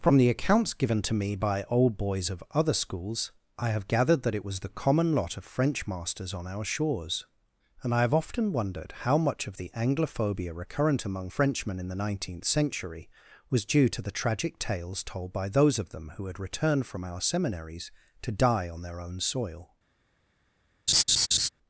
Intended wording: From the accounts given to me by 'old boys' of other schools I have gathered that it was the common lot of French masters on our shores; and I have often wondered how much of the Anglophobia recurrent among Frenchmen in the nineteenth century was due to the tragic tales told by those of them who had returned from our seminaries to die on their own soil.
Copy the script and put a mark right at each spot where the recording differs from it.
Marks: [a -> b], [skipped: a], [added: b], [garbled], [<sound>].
From the accounts given to me by 'old boys' of other schools I have gathered that it was the common lot of French masters on our shores; and I have often wondered how much of the Anglophobia recurrent among Frenchmen in the nineteenth century was due to the tragic tales told by those of them who had returned from our seminaries to die on their own soil. [laugh]